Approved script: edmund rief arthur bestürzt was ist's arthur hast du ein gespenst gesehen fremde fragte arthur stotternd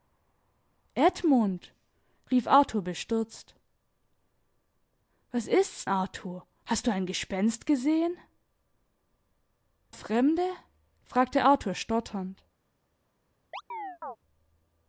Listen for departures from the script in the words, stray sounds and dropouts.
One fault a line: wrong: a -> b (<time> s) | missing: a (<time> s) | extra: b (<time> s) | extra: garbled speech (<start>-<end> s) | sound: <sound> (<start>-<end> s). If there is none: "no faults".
sound: chirp (13.5-14.2 s)